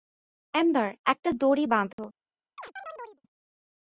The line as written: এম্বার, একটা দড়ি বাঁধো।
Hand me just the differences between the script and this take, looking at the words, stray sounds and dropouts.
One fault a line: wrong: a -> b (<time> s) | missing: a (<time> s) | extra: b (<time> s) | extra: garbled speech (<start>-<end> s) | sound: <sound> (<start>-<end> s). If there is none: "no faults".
sound: dropout (1.9-2.0 s)
sound: chirp (2.6-3.2 s)